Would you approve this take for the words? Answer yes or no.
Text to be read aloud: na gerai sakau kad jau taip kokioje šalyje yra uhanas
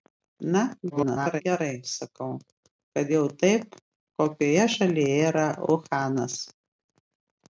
no